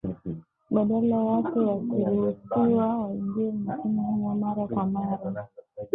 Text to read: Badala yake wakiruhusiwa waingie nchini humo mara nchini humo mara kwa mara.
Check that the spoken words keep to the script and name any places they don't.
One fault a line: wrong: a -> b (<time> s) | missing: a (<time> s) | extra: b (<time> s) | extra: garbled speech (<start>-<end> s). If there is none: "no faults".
missing: nchini humo mara (4.7 s)